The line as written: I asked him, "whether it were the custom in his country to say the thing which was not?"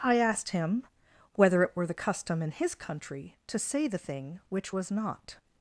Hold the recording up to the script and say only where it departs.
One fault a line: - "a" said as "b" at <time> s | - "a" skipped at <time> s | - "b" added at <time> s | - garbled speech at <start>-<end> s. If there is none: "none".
none